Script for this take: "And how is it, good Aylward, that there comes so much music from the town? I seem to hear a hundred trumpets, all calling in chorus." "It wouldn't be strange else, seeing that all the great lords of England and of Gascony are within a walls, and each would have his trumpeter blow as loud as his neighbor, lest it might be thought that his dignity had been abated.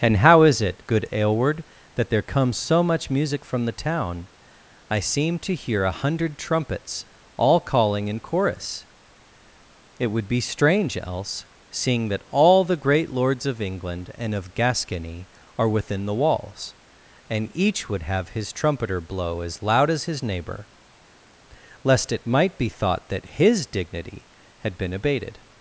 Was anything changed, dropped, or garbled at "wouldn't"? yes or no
yes